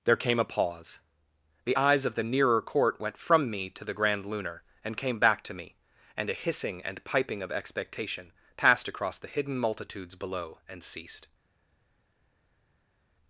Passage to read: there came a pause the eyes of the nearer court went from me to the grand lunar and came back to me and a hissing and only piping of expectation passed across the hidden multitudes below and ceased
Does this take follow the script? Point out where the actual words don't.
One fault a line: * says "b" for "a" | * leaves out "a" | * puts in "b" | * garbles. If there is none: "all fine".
* leaves out "only"